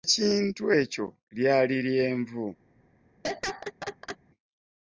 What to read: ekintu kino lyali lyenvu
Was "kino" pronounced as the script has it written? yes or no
no